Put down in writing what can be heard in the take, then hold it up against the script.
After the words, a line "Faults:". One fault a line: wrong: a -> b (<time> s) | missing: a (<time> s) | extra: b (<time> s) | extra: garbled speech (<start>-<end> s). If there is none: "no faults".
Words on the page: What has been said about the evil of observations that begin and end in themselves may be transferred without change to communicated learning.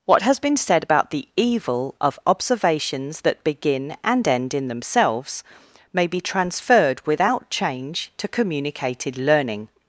What has been said about the evil of observations that begin and end in themselves may be transferred without change to communicated learning.
Faults:
no faults